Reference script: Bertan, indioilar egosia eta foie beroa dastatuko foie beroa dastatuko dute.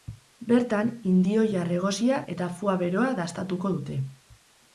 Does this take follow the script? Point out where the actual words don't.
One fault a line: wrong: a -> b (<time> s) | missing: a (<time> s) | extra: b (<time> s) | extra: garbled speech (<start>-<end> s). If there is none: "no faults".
missing: foie beroa dastatuko (3.7 s)